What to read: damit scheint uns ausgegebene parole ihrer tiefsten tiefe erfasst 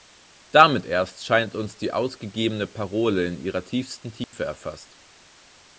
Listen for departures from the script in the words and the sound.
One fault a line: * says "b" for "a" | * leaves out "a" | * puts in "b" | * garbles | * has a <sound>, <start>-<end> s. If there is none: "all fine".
* puts in "erst"
* puts in "die"
* puts in "in"
* has a dropout, 4.2-4.3 s